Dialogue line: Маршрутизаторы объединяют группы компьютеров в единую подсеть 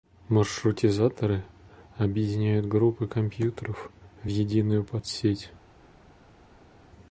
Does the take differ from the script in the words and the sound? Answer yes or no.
no